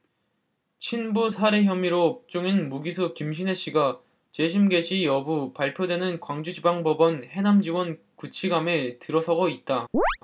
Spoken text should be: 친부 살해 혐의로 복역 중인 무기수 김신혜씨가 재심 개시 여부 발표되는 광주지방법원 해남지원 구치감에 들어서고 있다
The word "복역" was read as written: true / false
false